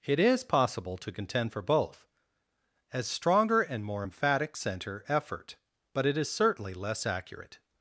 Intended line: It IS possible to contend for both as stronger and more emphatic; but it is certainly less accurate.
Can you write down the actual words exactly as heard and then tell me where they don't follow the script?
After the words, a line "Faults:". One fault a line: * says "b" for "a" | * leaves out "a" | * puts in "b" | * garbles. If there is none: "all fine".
It IS possible to contend for both as stronger and more emphatic; center effort but it is certainly less accurate.
Faults:
* puts in "center effort"